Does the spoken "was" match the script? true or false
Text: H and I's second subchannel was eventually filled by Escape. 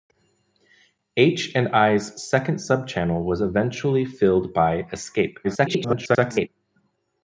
true